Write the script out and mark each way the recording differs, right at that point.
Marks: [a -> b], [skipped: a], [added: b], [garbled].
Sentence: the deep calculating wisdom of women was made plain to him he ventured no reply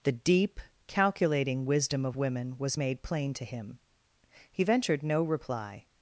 the deep calculating wisdom of women was made plain to him he ventured no reply